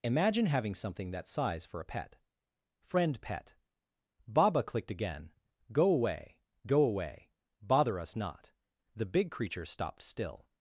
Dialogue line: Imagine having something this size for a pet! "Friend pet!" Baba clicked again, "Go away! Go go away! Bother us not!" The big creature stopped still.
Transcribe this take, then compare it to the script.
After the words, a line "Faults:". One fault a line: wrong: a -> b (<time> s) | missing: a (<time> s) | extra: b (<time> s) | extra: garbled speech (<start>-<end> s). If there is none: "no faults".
Imagine having something that size for a pet! "Friend pet!" Baba clicked again, "Go away! Go away! Bother us not!" The big creature stopped still.
Faults:
wrong: this -> that (1.1 s)
missing: go (6.8 s)